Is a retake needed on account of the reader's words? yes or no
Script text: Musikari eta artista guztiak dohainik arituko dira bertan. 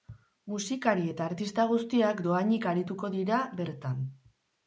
no